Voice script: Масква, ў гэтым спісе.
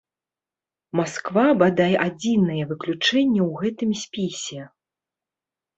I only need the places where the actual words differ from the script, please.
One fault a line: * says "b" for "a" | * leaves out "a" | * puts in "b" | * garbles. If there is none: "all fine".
* puts in "бадай адзінае выключэнне"